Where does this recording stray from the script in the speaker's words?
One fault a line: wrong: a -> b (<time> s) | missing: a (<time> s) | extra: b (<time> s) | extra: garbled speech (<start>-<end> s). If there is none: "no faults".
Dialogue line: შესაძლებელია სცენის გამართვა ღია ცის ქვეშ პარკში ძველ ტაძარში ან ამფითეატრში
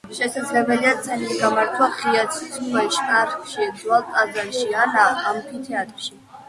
no faults